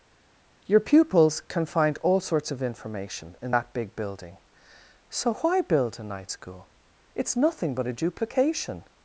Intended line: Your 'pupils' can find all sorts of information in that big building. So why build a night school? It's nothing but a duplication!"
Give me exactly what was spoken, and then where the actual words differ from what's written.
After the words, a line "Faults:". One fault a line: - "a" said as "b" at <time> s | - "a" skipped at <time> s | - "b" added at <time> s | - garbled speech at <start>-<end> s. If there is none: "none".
Your 'pupils' can find all sorts of information in that big building. So why build a night school? It's nothing but a duplication!"
Faults:
none